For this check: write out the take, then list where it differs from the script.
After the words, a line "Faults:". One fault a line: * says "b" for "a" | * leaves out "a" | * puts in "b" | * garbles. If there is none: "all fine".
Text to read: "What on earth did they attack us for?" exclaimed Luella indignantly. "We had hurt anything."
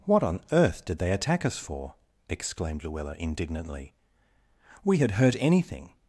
"What on earth did they attack us for?" exclaimed Luella indignantly. "We had hurt anything."
Faults:
all fine